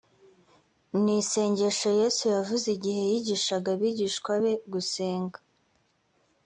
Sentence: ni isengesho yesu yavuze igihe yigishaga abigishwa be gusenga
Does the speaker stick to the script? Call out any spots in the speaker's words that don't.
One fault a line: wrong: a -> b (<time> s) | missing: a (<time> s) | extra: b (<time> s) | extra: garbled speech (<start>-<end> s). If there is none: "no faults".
no faults